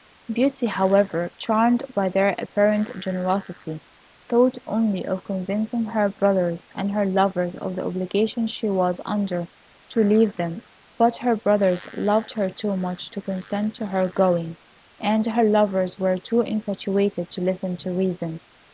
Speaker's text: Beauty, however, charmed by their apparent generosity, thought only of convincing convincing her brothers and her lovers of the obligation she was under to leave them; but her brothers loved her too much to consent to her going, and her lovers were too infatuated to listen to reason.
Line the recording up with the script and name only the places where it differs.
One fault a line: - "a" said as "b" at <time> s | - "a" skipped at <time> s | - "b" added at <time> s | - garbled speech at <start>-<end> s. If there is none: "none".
- "convincing" skipped at 5.8 s